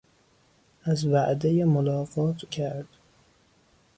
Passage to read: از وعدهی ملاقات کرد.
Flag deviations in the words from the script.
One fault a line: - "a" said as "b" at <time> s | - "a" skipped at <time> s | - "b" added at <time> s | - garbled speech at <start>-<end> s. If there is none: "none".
none